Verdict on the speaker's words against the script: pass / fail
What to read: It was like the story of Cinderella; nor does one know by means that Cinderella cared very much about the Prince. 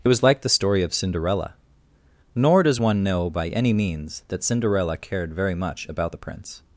fail